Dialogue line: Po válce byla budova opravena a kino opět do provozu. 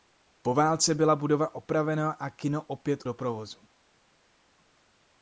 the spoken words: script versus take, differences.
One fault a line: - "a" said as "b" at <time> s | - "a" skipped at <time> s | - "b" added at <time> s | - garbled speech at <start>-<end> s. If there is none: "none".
none